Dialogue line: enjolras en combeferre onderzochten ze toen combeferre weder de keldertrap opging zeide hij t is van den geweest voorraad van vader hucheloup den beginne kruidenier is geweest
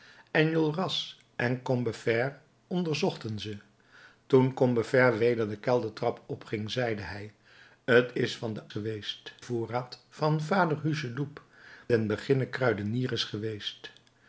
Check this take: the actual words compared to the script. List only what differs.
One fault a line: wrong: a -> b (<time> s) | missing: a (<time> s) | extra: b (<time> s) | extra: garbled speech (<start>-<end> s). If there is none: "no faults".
no faults